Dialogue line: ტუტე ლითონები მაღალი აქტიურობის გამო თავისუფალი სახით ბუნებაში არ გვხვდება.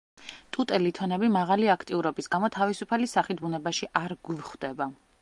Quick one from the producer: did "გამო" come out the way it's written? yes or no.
yes